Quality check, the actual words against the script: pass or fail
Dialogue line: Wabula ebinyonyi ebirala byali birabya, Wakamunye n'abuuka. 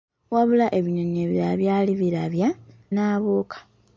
fail